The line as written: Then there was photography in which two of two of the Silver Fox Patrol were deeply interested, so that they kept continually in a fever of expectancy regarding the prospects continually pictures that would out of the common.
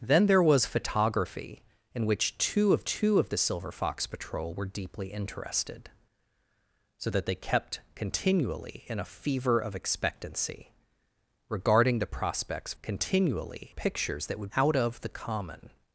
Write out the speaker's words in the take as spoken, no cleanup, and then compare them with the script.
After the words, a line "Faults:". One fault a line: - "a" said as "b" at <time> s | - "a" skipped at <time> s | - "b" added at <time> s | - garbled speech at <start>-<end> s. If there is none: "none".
Then there was photography in which two of two of the Silver Fox Patrol were deeply interested, so that they kept continually in a fever of expectancy regarding the prospects continually pictures that would out of the common.
Faults:
none